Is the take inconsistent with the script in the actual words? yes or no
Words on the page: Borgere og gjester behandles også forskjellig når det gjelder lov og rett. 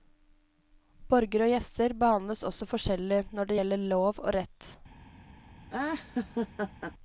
no